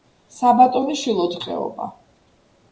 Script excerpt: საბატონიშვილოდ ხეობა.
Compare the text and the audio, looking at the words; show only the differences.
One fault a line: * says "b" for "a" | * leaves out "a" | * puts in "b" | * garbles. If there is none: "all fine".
all fine